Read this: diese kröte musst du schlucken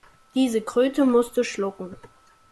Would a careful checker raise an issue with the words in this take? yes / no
no